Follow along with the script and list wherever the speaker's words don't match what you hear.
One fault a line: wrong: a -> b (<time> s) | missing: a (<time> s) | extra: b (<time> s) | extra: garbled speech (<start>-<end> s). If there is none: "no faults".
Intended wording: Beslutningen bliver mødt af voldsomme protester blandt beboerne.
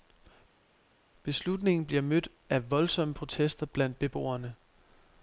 no faults